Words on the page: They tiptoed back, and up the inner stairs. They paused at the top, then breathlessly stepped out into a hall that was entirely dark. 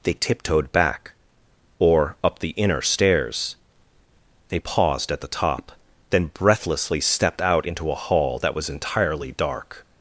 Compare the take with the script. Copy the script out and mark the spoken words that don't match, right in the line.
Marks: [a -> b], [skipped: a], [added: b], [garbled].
They tiptoed back, [and -> or] up the inner stairs. They paused at the top, then breathlessly stepped out into a hall that was entirely dark.